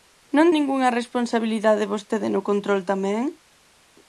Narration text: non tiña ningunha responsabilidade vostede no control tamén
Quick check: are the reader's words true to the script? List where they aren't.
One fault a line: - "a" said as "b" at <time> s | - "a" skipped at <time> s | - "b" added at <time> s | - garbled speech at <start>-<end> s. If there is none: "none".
- "tiña" skipped at 0.5 s